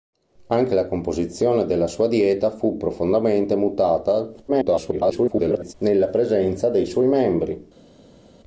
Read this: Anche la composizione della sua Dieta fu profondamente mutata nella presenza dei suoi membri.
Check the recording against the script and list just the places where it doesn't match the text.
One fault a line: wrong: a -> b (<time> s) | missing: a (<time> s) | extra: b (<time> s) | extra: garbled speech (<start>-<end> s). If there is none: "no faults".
extra: garbled speech (4.5-5.7 s)